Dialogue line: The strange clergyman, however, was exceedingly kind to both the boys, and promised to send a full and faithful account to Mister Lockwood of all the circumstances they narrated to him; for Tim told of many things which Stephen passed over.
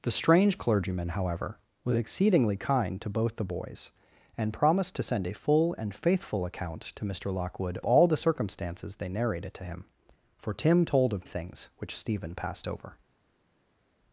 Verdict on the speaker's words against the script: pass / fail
fail